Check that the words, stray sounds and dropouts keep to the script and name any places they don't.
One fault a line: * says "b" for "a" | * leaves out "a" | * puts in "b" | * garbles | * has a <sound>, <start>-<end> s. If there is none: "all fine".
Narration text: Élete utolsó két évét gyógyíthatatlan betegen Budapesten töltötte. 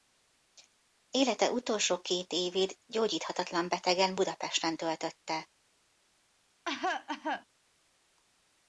* has a cough, 6.6-7.4 s